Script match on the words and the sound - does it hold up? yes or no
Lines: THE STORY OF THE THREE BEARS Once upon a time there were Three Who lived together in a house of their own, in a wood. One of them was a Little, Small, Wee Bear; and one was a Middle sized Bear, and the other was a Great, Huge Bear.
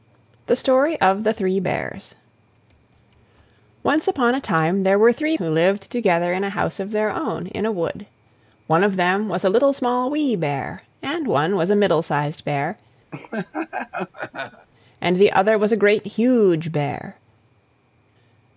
no